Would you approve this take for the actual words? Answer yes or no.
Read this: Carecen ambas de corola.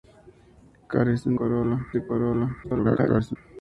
no